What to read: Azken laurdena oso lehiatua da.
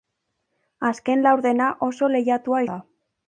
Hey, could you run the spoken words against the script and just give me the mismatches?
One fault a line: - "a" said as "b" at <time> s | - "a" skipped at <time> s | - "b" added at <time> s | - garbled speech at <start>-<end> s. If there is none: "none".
none